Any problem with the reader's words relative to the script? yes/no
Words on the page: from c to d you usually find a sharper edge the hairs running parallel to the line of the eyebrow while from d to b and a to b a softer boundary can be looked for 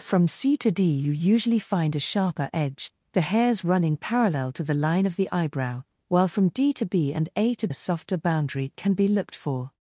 yes